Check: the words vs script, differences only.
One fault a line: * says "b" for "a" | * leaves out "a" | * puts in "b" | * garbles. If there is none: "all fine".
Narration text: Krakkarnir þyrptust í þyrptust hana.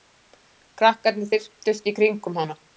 * says "kringum" for "þyrptust"